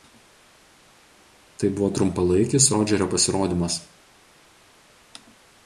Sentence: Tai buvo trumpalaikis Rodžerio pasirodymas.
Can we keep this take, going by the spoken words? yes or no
yes